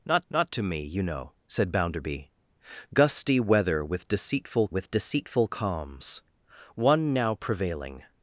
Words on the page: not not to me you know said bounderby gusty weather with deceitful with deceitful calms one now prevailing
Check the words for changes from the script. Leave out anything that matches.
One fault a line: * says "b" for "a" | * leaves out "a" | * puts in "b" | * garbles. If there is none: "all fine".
all fine